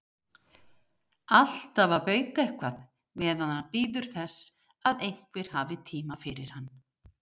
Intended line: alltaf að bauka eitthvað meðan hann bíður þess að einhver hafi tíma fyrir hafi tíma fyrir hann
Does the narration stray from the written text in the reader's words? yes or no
yes